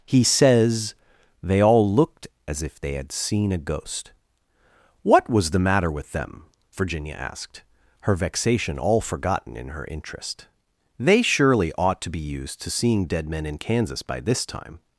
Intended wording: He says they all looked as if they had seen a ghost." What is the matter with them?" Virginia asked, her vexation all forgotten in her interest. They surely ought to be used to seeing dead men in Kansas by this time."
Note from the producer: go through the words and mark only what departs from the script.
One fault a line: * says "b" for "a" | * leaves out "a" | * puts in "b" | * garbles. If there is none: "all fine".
* says "was" for "is"